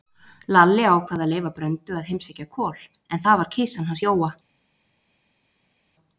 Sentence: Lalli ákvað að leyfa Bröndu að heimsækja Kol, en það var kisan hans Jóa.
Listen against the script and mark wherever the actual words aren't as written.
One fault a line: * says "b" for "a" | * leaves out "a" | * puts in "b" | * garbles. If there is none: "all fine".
all fine